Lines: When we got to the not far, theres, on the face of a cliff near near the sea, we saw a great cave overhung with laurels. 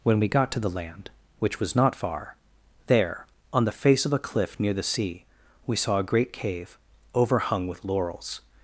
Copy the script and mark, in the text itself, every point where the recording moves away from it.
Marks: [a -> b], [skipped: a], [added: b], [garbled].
When we got to the [added: land which was] not far, [theres, -> there] on the face of a cliff near [skipped: near] the sea, we saw a great cave overhung with laurels.